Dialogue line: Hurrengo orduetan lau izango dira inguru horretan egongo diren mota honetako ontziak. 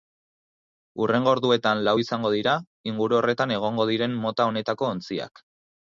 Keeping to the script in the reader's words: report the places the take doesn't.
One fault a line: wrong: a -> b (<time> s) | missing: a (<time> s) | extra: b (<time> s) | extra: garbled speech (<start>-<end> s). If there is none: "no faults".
no faults